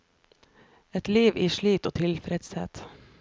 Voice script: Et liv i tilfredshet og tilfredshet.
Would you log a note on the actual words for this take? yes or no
yes